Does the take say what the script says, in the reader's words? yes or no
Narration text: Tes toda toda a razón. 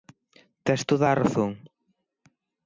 no